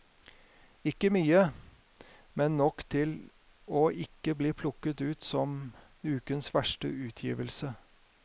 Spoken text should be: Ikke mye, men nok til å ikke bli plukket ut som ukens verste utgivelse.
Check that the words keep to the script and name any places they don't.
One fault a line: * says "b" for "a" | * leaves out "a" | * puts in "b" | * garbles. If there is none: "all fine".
all fine